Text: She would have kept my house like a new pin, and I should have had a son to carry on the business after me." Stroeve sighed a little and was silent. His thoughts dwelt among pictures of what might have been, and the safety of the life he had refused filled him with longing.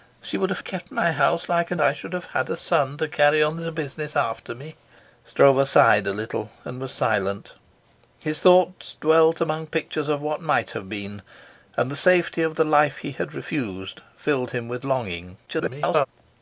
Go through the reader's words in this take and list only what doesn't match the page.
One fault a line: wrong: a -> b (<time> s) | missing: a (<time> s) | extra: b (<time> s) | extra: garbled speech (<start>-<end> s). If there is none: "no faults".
missing: new pin and (1.8 s)
extra: garbled speech (15.5-16.1 s)